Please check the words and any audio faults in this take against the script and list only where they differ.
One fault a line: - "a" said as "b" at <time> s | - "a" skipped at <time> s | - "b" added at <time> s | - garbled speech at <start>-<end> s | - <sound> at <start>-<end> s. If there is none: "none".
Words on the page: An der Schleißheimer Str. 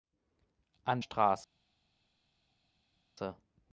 - "der Schleißheimer" skipped at 1.0 s